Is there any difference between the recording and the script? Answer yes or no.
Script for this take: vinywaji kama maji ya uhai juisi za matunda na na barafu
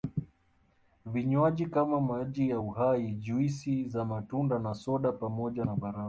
yes